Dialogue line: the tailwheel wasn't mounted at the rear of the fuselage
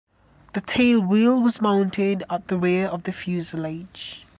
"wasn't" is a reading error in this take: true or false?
true